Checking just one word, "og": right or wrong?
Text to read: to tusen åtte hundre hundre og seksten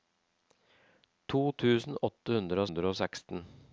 right